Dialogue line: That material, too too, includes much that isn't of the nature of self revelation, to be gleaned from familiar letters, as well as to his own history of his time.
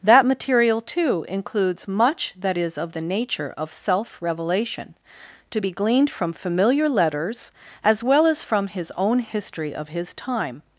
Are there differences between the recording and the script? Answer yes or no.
yes